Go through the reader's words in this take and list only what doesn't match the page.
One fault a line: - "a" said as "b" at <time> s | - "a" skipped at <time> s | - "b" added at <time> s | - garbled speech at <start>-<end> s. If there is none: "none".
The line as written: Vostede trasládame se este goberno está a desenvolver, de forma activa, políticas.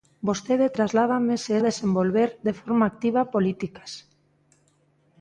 - "este goberno está" skipped at 1.5 s